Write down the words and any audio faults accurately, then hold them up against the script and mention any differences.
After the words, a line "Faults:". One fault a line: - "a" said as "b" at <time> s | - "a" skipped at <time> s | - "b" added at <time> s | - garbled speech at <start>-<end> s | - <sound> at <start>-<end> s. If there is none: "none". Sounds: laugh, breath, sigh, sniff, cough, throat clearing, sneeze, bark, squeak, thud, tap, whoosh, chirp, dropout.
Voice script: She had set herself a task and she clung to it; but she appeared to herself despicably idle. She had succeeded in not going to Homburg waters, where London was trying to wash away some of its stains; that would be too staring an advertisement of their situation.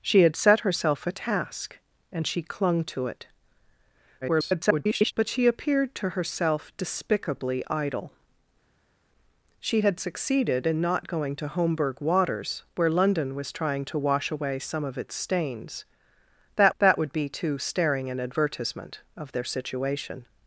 She had set herself a task and she clung to it; [garbled] but she appeared to herself despicably idle. She had succeeded in not going to Homburg waters, where London was trying to wash away some of its stains; that that would be too staring an advertisement of their situation.
Faults:
- garbled speech at 4.2-5.1 s
- "that" added at 16.8 s